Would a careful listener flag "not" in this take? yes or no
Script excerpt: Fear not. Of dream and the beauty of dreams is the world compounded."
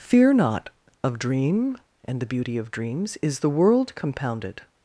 no